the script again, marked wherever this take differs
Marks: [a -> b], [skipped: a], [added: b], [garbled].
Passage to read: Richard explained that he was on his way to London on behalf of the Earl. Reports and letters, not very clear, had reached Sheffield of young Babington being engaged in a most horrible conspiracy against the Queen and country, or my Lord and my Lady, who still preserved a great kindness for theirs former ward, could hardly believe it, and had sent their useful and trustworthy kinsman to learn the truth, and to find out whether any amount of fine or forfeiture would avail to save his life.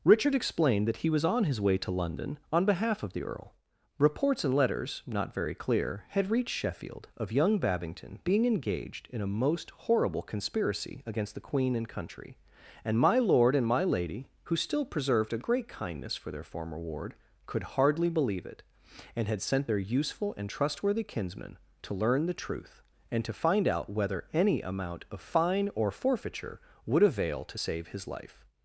Richard explained that he was on his way to London on behalf of the Earl. Reports and letters, not very clear, had reached Sheffield of young Babington being engaged in a most horrible conspiracy against the Queen and country, [or -> and] my Lord and my Lady, who still preserved a great kindness for [theirs -> their] former ward, could hardly believe it, and had sent their useful and trustworthy kinsman to learn the truth, and to find out whether any amount of fine or forfeiture would avail to save his life.